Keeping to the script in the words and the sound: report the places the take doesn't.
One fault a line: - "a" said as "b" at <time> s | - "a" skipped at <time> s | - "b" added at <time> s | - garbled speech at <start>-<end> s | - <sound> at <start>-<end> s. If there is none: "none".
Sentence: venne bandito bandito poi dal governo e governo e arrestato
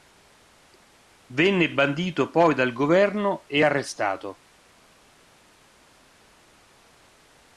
- "bandito" skipped at 2.3 s
- "governo e" skipped at 3.6 s